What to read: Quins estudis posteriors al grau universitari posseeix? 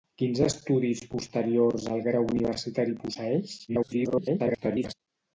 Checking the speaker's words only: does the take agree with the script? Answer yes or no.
no